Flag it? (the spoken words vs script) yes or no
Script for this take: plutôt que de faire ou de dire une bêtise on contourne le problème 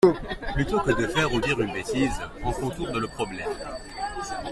yes